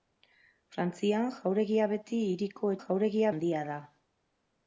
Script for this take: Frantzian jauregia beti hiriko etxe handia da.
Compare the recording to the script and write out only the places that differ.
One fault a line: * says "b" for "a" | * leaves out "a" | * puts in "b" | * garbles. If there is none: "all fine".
* says "jauregia" for "etxe"